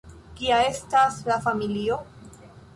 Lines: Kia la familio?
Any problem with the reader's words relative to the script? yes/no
yes